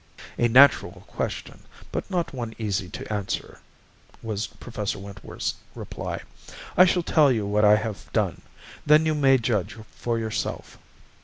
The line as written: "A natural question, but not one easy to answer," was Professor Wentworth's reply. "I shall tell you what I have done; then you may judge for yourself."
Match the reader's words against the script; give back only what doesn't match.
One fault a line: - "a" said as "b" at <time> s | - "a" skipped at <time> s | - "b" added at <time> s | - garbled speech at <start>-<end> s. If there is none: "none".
none